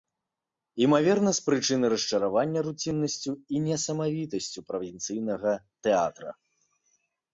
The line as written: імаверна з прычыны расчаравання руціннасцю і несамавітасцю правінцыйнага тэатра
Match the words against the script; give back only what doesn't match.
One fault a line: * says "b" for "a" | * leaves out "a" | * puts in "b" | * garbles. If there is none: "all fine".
all fine